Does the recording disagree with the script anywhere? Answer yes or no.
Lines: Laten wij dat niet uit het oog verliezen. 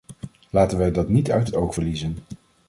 no